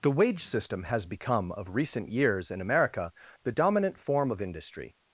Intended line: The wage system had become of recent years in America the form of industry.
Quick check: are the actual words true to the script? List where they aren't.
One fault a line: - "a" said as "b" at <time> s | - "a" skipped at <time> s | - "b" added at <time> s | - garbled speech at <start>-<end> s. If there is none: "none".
- "had" said as "has" at 0.8 s
- "dominant" added at 3.5 s